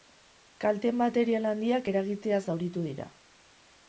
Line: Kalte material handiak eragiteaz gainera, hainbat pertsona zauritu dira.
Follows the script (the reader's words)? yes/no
no